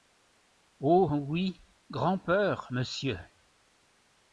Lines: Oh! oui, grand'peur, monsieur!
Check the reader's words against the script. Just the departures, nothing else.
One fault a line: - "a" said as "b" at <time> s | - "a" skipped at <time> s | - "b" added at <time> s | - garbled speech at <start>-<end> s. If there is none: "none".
none